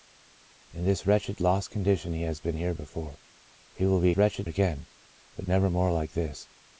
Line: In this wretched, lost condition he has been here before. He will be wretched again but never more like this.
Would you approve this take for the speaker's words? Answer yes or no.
yes